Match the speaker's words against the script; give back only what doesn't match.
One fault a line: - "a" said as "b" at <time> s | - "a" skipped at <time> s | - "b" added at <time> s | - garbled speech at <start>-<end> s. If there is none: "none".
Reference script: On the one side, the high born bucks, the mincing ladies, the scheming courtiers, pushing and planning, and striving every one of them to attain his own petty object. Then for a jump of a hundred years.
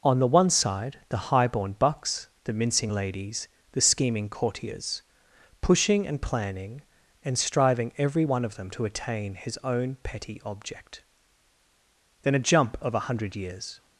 - "for" skipped at 12.4 s